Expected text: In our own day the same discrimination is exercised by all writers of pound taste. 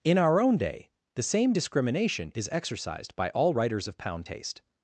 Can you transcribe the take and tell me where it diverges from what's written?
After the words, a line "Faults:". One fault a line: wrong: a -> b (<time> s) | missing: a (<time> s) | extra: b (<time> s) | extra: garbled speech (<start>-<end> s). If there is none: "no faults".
In our own day the same discrimination is exercised by all writers of pound taste.
Faults:
no faults